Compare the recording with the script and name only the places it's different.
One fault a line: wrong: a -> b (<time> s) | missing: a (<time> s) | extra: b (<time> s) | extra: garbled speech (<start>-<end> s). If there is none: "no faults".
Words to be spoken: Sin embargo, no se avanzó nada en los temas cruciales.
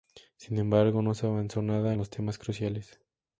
no faults